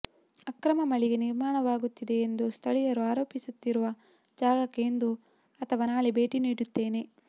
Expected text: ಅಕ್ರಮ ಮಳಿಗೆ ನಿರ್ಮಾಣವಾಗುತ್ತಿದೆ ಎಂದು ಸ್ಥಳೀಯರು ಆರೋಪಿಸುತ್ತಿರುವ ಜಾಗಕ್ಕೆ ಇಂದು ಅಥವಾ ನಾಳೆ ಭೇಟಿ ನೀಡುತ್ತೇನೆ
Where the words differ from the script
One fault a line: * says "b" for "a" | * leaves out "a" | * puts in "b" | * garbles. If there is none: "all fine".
all fine